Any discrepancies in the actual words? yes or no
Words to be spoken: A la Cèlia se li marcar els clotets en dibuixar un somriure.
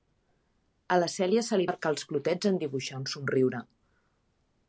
no